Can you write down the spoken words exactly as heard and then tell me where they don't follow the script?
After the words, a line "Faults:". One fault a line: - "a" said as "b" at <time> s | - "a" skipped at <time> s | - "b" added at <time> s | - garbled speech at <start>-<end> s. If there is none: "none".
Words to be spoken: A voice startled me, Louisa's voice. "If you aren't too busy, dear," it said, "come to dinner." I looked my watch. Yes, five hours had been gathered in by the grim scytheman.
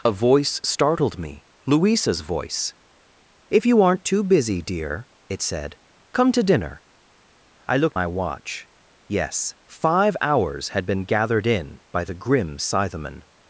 A voice startled me, Louisa's voice. "If you aren't too busy, dear," it said, "come to dinner." I looked my watch. Yes, five hours had been gathered in by the grim scytheman.
Faults:
none